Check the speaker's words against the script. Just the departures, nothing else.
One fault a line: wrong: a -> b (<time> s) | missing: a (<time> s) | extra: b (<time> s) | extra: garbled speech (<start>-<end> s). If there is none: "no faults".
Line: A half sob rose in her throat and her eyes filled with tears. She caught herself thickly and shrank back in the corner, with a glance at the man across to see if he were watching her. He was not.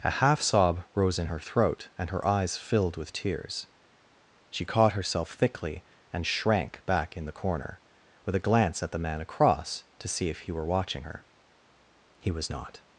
no faults